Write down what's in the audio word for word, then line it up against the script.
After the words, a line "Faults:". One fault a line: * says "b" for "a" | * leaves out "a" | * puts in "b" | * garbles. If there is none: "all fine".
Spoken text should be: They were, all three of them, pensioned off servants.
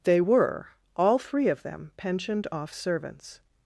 They were, all three of them, pensioned off servants.
Faults:
all fine